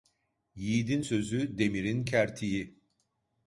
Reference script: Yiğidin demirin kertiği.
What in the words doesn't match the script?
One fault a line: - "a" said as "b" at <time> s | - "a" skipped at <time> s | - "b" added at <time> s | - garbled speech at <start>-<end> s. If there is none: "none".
- "sözü" added at 1.0 s